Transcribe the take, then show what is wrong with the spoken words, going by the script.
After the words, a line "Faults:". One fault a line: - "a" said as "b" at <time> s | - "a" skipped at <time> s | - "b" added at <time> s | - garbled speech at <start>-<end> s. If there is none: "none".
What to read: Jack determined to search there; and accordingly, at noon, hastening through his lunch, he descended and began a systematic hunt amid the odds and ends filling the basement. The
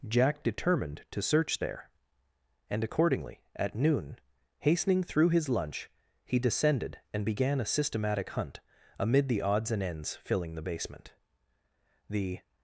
Jack determined to search there; and accordingly, at noon, hastening through his lunch, he descended and began a systematic hunt amid the odds and ends filling the basement. The
Faults:
none